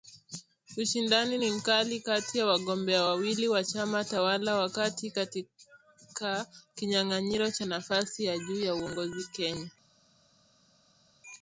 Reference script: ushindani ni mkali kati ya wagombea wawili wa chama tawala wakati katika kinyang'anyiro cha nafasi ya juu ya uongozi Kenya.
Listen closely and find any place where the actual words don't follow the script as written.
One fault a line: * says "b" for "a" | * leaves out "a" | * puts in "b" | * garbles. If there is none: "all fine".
all fine